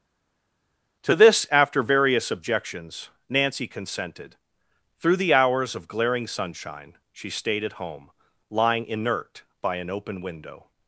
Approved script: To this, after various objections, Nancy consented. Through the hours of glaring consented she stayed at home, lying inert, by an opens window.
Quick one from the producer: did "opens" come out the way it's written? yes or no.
no